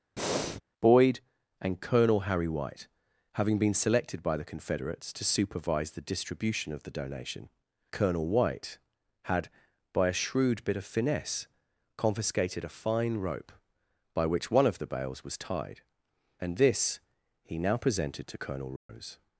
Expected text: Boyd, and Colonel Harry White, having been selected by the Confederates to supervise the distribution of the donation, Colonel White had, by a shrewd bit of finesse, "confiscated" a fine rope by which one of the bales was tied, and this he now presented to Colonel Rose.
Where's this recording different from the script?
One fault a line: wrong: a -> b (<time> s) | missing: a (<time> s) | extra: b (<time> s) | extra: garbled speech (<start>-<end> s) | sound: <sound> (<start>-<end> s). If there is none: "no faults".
sound: breath (0.2-0.6 s)
sound: dropout (18.8-18.9 s)